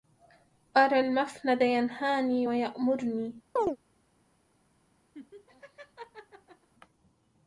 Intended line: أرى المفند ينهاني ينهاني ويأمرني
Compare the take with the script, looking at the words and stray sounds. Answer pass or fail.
fail